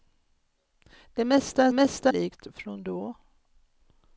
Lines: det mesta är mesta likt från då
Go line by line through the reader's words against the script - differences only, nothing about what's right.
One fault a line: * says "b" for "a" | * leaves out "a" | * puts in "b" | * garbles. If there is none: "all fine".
all fine